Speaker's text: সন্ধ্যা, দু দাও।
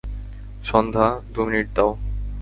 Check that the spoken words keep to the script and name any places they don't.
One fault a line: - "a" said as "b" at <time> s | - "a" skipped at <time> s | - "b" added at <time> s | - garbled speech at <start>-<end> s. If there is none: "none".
- "মিনিট" added at 1.4 s